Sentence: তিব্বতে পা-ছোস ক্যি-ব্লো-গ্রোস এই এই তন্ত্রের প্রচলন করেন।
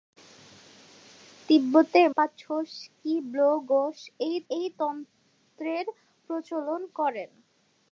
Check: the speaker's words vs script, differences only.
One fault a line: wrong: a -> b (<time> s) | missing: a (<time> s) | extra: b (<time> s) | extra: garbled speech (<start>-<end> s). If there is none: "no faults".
no faults